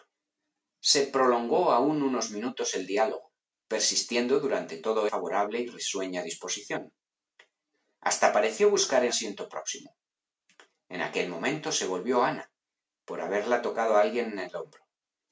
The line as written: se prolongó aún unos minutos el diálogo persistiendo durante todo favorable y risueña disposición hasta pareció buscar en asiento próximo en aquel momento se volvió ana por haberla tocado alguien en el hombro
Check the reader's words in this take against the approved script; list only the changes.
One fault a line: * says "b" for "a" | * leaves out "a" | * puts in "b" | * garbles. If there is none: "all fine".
all fine